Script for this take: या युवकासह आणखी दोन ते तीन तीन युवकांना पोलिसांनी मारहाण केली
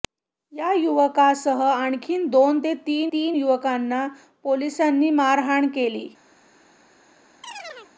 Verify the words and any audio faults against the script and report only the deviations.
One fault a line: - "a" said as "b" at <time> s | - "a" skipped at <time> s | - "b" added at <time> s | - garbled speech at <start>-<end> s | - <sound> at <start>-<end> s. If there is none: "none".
- chirp at 7.4-7.9 s